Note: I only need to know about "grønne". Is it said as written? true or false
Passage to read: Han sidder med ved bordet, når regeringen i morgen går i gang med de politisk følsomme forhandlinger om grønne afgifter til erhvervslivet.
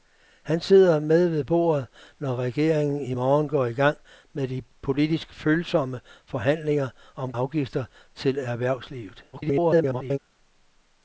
false